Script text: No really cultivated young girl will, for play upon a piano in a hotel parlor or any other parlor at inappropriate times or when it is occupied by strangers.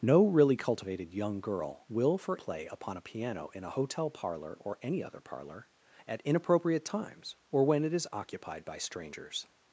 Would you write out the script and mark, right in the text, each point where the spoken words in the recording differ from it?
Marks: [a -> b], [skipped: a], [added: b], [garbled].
No really cultivated young girl will, for play upon a piano in a hotel parlor or any other parlor at inappropriate times or when it is occupied by strangers.